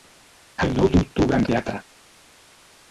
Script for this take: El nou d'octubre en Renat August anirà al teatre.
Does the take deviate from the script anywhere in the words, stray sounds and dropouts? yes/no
yes